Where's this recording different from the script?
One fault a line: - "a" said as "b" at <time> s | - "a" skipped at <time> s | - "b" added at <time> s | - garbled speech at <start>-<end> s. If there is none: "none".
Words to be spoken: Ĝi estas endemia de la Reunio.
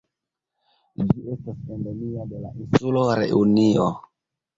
- "insulo" added at 2.6 s